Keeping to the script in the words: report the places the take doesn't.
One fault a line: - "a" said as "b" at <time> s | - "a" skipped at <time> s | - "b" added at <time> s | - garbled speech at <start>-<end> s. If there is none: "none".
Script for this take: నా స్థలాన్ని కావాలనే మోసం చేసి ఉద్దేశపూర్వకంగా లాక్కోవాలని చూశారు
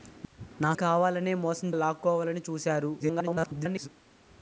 - "స్థలాన్ని" skipped at 0.7 s
- "చేసి ఉద్దేశపూర్వకంగా" skipped at 1.7 s
- garbled speech at 3.0-3.9 s